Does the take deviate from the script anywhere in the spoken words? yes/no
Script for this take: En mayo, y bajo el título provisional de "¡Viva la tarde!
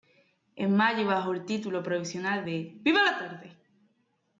no